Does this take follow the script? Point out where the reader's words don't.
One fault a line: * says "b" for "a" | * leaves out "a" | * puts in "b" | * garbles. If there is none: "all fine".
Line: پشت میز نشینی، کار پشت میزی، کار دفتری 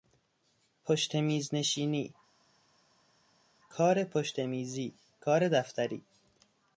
all fine